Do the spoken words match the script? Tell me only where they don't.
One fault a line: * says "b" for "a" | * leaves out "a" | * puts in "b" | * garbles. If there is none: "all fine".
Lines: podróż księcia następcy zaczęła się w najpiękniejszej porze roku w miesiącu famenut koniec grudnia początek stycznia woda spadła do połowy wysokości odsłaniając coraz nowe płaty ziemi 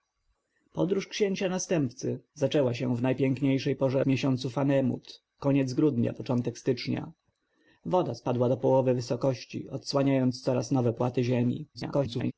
* leaves out "roku"
* garbles